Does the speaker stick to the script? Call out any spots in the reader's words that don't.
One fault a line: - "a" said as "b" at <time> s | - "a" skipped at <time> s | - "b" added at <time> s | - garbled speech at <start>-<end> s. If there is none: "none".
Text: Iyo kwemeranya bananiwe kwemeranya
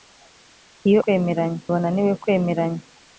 none